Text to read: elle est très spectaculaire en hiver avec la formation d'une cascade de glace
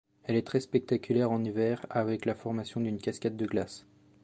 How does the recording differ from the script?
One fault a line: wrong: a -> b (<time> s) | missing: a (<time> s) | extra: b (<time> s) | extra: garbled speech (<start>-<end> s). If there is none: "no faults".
no faults